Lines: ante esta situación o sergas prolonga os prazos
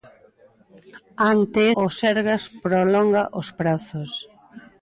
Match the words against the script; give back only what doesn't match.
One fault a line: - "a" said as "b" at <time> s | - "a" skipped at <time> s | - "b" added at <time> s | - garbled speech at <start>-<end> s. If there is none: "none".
- "esta situación" skipped at 1.6 s